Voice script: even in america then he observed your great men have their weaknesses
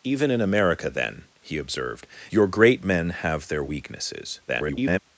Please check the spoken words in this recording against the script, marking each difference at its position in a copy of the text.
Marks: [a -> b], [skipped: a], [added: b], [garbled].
even in america then he observed your great men have their weaknesses [garbled]